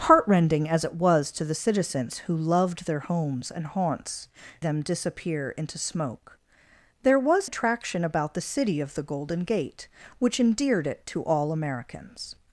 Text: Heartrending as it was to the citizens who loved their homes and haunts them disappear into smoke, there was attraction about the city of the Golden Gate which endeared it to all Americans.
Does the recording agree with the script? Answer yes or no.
yes